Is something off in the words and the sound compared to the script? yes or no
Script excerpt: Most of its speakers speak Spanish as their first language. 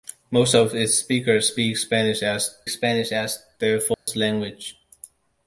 yes